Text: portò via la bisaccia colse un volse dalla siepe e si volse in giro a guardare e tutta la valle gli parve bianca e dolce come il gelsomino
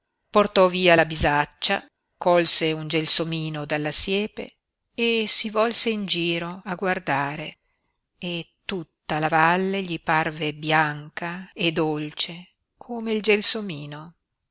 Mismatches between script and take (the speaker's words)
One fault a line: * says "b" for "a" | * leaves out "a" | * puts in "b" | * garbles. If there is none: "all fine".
* says "gelsomino" for "volse"